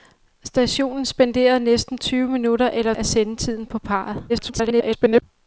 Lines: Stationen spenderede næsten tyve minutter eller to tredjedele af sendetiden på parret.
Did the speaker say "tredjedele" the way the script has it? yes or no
no